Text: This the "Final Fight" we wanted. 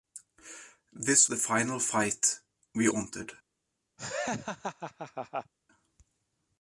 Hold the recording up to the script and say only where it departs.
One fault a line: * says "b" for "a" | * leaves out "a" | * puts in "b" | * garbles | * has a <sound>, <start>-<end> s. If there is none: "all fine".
* has a laugh, 4.0-5.5 s